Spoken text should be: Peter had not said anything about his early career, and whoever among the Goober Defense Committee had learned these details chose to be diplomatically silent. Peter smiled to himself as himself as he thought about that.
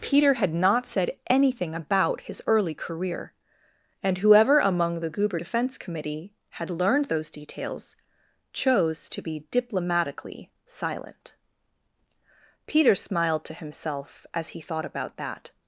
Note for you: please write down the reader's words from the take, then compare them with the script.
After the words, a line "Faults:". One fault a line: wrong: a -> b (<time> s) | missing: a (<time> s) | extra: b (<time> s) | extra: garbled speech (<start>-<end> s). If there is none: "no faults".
Peter had not said anything about his early career, and whoever among the Goober Defense Committee had learned those details chose to be diplomatically silent. Peter smiled to himself as he thought about that.
Faults:
wrong: these -> those (7.1 s)
missing: himself as (14.5 s)